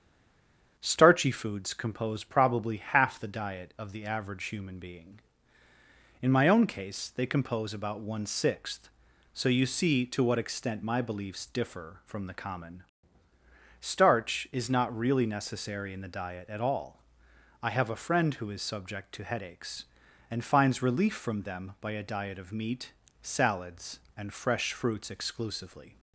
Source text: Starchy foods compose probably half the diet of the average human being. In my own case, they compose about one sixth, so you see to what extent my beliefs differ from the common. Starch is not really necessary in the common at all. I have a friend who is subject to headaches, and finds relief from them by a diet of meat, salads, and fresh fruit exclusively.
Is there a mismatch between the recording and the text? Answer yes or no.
yes